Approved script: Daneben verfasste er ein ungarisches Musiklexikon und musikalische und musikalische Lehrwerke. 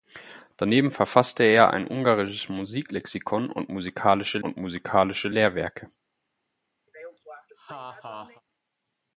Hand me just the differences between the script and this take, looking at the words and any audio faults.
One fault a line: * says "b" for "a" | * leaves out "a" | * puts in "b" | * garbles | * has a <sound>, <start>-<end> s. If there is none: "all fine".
* has a laugh, 6.9-8.4 s